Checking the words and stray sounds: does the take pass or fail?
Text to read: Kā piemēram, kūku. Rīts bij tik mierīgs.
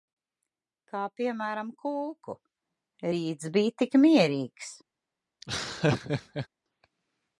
fail